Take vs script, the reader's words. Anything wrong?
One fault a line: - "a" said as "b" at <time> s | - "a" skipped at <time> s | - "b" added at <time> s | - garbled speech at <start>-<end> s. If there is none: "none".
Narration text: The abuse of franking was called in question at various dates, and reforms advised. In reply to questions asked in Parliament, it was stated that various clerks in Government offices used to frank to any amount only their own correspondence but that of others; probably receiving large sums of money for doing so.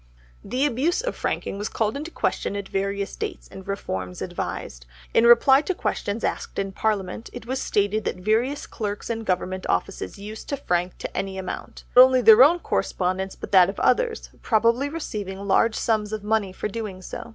none